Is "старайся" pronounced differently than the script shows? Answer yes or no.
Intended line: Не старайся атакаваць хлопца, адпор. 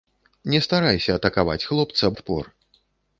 no